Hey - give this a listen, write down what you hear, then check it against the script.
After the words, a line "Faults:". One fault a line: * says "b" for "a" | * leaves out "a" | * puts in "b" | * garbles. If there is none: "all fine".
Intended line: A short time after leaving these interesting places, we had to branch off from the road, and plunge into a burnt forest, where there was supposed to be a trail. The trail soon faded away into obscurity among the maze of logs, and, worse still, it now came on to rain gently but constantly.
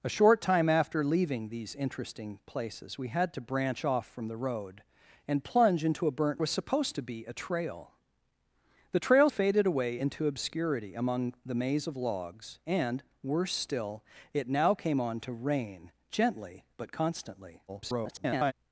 A short time after leaving these interesting places, we had to branch off from the road, and plunge into a burnt was supposed to be a trail. The trail faded away into obscurity among the maze of logs, and, worse still, it now came on to rain gently but constantly. [garbled]
Faults:
* leaves out "forest where there"
* leaves out "soon"
* garbles